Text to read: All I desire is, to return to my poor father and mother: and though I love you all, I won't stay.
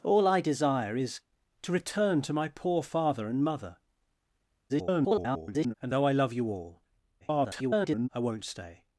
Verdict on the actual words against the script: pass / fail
fail